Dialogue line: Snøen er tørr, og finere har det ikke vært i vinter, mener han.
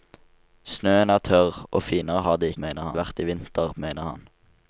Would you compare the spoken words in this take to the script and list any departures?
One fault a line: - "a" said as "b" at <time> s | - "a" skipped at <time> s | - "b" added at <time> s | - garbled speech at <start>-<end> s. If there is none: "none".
- "ikke" said as "mener" at 2.6 s